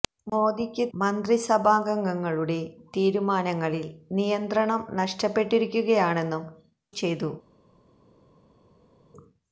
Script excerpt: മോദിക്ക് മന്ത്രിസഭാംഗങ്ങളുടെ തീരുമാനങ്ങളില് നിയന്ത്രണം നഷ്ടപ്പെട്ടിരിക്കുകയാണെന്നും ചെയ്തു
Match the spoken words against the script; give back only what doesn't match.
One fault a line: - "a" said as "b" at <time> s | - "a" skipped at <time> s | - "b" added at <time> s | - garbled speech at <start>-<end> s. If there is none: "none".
none